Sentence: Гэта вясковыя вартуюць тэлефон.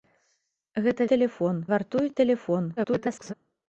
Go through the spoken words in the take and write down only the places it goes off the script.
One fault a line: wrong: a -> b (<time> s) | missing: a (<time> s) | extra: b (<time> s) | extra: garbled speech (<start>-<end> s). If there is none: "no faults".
wrong: вясковыя -> тэлефон (1.1 s)
extra: garbled speech (2.8-3.3 s)